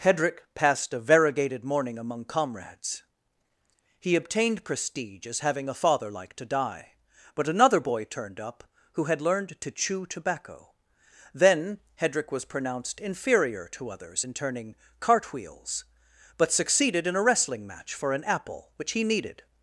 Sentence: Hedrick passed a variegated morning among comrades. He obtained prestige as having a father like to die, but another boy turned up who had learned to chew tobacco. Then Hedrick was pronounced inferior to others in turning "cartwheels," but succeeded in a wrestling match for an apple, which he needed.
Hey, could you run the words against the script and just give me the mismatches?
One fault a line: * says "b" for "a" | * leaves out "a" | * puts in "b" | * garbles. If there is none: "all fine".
all fine